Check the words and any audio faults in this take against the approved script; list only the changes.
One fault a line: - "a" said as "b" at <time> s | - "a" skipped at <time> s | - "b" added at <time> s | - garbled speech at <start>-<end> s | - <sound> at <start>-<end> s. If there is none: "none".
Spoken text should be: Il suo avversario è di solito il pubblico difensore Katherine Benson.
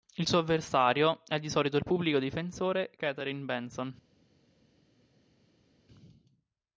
none